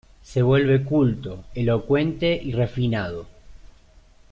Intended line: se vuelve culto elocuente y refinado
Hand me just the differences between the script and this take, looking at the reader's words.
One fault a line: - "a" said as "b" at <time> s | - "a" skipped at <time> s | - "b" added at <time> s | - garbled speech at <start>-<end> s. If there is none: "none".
none